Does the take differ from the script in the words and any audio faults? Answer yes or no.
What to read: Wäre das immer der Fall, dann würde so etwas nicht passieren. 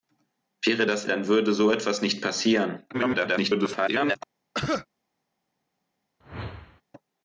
yes